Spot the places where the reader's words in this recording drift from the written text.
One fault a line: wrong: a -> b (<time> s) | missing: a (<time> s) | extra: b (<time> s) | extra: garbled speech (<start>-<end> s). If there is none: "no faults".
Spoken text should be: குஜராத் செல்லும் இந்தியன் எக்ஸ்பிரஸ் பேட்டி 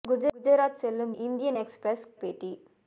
no faults